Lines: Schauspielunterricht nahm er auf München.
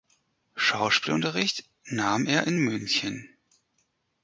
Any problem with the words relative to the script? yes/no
yes